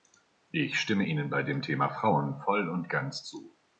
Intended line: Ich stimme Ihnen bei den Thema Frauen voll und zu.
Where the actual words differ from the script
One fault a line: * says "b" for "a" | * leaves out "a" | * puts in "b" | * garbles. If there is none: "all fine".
* says "dem" for "den"
* puts in "ganz"